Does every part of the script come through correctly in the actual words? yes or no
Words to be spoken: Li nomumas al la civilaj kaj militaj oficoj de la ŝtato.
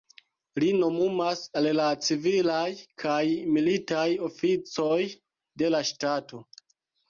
yes